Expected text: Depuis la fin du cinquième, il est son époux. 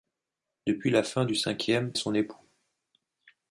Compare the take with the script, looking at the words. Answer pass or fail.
fail